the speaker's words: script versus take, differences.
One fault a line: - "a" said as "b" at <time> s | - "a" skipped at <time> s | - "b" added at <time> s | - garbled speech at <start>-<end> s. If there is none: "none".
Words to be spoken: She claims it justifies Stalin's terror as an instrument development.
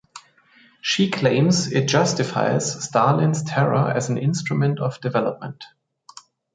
- "of" added at 4.8 s